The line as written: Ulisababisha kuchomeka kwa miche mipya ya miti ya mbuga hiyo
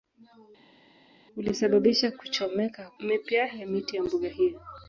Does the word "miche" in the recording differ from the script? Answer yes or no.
yes